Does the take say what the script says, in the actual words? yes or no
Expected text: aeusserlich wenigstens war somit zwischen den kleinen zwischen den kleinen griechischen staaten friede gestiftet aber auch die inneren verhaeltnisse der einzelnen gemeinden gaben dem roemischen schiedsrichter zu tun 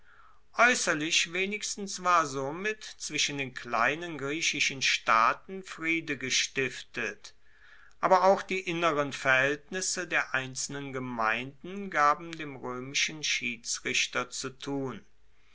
no